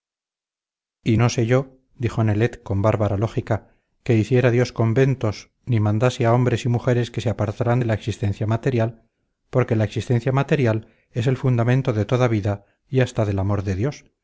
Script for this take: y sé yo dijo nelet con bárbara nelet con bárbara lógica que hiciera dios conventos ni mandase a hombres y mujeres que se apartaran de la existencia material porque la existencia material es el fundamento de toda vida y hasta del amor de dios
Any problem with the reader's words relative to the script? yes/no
yes